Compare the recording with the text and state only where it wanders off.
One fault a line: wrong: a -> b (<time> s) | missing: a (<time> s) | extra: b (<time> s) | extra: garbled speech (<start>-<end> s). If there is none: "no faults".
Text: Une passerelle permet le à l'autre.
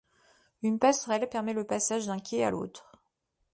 extra: passage d'un quai (1.6 s)